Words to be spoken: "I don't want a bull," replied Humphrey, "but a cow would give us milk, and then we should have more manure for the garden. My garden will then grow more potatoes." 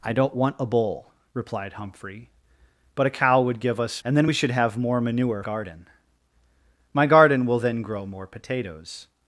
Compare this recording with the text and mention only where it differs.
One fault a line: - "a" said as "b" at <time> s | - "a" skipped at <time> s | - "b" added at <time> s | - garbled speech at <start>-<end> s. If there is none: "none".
- "milk" skipped at 4.0 s
- "for the" skipped at 5.4 s